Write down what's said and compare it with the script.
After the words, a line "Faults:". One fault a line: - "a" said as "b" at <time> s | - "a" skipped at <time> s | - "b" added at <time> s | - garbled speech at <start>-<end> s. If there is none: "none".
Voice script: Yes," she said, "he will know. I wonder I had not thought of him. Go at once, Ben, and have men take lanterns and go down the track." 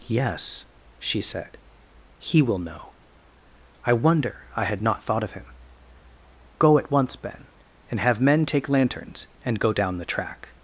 Yes," she said, "he will know. I wonder I had not thought of him. Go at once, Ben, and have men take lanterns and go down the track."
Faults:
none